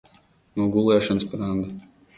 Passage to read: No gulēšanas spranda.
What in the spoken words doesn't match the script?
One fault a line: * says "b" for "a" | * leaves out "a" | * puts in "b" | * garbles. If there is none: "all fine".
all fine